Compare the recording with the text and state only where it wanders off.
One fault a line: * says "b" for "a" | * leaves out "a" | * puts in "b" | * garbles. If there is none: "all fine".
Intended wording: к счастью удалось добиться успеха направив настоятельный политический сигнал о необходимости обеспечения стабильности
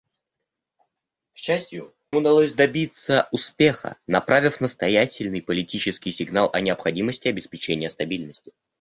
all fine